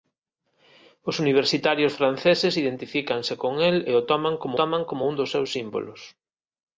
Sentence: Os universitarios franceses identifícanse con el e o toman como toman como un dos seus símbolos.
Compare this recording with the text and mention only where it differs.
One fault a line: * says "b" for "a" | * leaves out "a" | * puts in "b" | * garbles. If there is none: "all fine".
all fine